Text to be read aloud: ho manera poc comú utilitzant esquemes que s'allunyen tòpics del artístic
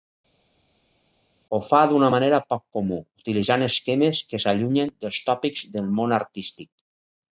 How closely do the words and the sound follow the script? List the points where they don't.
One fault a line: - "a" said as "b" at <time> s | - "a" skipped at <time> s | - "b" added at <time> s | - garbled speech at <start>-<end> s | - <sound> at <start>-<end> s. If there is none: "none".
- "fa d'una" added at 1.7 s
- "dels" added at 5.0 s
- "món" added at 6.0 s